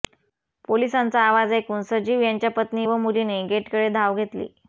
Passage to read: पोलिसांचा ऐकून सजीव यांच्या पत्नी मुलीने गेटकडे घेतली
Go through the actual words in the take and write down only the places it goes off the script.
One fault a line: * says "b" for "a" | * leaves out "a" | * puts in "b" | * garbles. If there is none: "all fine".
* puts in "आवाज"
* puts in "व"
* puts in "धाव"